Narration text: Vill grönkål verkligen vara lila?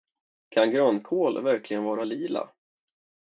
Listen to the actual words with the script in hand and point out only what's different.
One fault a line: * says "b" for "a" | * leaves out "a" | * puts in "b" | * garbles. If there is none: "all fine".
* says "Kan" for "Vill"